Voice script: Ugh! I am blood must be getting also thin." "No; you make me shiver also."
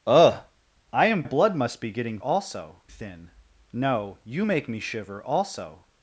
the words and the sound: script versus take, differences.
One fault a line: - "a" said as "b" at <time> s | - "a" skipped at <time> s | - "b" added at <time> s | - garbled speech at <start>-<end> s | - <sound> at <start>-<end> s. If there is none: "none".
none